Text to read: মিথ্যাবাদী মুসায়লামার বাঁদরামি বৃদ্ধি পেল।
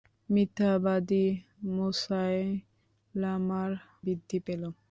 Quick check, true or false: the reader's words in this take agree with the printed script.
false